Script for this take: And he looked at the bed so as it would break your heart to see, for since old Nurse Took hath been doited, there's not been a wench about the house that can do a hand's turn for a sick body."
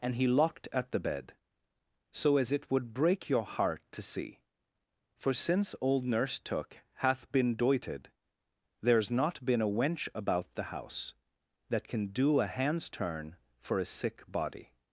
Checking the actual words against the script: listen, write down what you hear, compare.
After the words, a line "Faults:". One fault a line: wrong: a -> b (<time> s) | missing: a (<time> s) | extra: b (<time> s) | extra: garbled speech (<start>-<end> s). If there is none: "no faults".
And he locked at the bed so as it would break your heart to see, for since old Nurse Took hath been doited, there's not been a wench about the house that can do a hand's turn for a sick body."
Faults:
wrong: looked -> locked (0.3 s)